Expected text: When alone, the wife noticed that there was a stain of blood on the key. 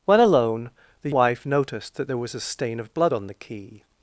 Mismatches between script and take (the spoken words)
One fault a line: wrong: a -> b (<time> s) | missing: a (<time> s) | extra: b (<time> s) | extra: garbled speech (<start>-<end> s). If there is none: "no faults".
no faults